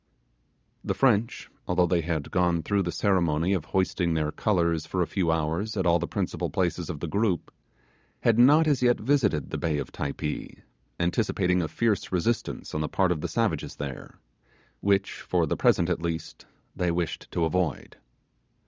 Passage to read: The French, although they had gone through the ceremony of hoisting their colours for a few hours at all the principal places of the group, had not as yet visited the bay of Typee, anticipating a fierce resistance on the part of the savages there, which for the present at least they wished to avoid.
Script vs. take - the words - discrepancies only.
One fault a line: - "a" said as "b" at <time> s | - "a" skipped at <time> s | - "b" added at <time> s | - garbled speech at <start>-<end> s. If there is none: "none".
none